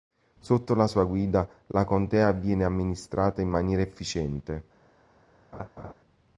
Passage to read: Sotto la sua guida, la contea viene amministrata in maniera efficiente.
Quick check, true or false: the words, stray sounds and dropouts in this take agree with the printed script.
false